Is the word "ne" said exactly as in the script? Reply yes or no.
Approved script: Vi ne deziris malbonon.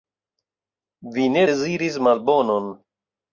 yes